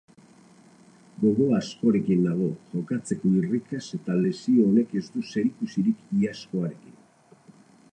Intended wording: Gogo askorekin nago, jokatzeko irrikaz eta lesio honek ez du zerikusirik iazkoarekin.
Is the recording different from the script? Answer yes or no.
no